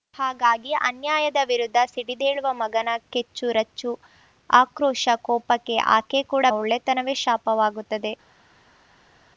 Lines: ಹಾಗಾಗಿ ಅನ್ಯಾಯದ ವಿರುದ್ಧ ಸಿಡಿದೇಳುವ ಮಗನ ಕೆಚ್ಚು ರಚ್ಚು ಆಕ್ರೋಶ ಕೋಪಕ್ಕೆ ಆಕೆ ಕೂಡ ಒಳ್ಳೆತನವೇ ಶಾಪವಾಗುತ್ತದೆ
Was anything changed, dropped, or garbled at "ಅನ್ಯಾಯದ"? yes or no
no